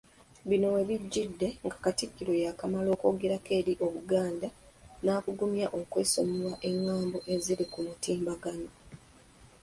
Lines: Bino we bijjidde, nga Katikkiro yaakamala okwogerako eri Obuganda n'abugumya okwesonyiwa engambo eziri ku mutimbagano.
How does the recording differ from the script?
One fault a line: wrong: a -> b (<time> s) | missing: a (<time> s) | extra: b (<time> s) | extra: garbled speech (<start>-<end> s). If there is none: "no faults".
no faults